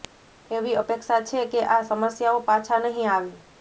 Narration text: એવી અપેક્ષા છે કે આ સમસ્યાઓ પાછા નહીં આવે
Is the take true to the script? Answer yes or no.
yes